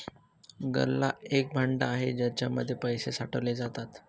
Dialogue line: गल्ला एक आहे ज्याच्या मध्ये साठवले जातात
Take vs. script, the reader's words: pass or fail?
fail